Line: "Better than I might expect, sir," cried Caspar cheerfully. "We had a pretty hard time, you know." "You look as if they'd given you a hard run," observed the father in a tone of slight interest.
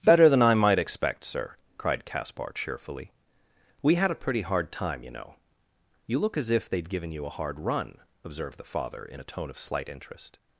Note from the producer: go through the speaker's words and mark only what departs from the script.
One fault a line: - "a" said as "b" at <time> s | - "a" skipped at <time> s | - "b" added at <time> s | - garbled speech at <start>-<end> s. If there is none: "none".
none